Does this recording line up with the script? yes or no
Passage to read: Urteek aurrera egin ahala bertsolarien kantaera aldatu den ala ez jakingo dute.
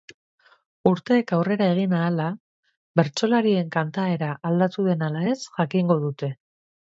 yes